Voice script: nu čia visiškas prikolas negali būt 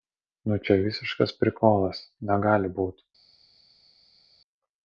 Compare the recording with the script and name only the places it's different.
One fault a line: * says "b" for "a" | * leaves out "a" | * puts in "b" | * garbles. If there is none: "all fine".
all fine